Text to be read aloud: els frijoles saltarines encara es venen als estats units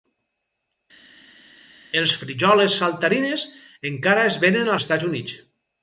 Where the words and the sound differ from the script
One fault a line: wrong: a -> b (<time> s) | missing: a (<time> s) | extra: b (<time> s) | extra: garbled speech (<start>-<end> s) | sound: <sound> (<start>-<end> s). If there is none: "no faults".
missing: als (4.7 s)